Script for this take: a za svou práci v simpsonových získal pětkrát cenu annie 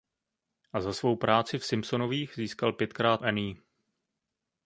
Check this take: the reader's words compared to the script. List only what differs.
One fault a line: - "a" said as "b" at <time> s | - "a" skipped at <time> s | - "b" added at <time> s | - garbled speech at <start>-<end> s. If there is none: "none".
- "cenu" skipped at 3.2 s